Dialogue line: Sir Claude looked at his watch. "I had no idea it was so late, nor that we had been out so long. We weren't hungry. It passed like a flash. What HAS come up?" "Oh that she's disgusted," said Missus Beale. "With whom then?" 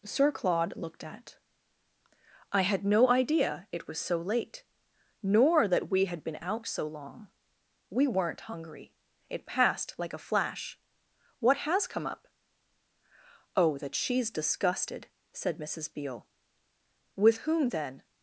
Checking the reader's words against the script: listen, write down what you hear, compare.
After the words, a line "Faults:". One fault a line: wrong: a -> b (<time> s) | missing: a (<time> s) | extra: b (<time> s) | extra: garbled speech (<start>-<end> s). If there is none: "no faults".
Sir Claude looked at. "I had no idea it was so late, nor that we had been out so long. We weren't hungry. It passed like a flash. What HAS come up?" "Oh that she's disgusted," said Missus Beale. "With whom then?"
Faults:
missing: his watch (1.4 s)